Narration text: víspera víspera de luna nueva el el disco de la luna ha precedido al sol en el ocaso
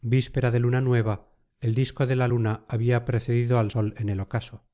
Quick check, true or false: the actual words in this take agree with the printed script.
false